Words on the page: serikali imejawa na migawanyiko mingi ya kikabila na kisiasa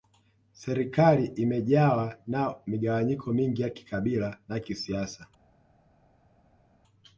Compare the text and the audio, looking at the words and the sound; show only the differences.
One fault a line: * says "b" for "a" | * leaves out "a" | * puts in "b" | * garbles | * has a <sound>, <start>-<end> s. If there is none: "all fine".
all fine